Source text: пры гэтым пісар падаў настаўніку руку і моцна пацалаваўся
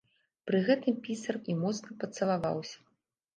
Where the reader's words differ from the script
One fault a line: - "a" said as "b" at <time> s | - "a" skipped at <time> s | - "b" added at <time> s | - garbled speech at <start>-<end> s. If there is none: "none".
- "падаў настаўніку руку" skipped at 1.4 s